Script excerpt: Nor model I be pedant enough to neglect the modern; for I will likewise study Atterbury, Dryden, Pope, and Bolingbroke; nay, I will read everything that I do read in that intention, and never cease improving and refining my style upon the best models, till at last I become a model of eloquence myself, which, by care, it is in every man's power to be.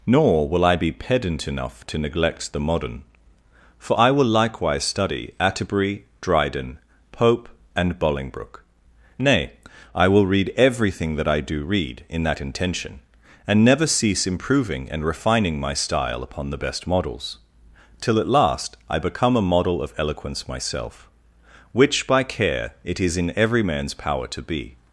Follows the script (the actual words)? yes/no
no